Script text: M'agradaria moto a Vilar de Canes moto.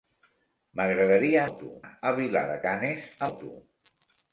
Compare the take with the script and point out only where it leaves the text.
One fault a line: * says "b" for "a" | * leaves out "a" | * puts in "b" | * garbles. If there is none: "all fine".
all fine